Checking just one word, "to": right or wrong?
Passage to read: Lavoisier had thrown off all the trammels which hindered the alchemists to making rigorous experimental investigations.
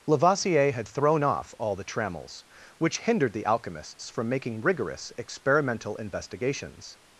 wrong